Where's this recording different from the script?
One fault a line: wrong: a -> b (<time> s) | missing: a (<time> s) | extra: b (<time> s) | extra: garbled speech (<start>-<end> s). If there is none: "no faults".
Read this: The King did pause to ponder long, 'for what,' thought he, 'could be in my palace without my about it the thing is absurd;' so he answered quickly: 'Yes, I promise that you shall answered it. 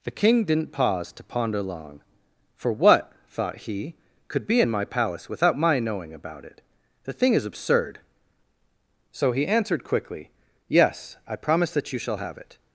wrong: did -> didn't (0.5 s)
extra: knowing (5.8 s)
wrong: answered -> have (12.2 s)